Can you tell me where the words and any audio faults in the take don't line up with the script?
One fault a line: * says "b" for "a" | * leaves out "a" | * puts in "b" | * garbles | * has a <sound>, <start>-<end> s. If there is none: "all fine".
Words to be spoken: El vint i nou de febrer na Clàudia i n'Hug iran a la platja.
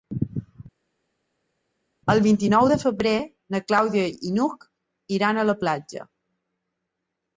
all fine